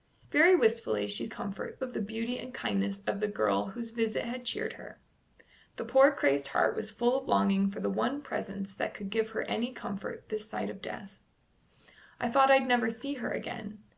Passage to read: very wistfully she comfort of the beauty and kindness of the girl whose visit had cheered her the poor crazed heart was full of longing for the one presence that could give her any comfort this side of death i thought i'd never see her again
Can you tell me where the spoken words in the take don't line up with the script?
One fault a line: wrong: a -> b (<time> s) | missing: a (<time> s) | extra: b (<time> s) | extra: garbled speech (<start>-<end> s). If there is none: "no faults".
no faults